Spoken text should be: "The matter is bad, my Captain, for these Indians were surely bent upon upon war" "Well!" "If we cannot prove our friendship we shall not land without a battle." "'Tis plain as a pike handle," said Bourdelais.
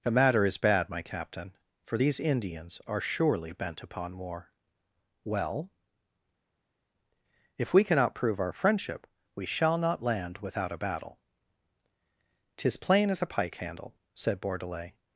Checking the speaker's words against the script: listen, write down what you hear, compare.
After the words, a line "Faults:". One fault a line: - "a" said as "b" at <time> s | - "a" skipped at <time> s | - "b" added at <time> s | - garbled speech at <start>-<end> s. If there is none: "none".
"The matter is bad, my Captain, for these Indians are surely bent upon war" "Well!" "If we cannot prove our friendship we shall not land without a battle." "'Tis plain as a pike handle," said Bourdelais.
Faults:
- "were" said as "are" at 2.9 s
- "upon" skipped at 4.2 s